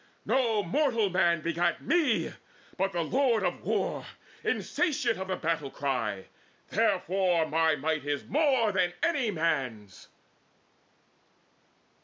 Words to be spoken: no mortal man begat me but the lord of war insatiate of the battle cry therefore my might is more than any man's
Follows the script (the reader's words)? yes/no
yes